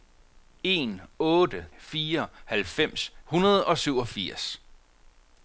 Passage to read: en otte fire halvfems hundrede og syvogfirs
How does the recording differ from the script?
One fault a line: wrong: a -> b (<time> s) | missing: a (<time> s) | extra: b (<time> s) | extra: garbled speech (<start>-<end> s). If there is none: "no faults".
no faults